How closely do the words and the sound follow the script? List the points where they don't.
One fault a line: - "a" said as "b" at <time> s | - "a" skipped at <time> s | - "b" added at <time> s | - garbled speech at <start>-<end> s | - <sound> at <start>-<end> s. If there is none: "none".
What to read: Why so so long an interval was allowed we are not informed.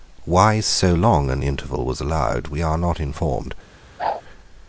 - "so" skipped at 0.9 s
- whoosh at 4.0-4.2 s